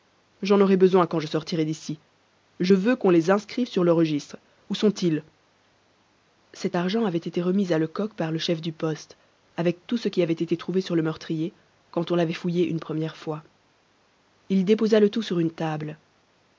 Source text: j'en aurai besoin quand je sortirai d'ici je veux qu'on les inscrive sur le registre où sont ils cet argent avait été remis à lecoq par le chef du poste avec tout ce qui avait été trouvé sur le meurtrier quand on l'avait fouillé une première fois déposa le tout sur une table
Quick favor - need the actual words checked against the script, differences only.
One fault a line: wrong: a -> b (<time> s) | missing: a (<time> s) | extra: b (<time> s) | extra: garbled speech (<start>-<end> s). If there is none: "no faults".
extra: il (14.5 s)